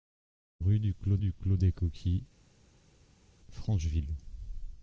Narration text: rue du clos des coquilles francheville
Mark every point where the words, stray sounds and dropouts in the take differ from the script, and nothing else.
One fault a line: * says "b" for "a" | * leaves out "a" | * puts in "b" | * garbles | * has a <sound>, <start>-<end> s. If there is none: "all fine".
* puts in "du clos"